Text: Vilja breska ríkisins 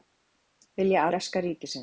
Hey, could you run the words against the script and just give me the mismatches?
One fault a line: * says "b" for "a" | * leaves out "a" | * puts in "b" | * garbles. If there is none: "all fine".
all fine